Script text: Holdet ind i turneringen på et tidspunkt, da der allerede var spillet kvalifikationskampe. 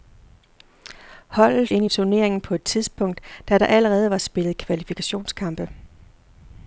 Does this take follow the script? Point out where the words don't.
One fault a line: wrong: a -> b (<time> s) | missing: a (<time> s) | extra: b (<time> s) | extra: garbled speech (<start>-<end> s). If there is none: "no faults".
no faults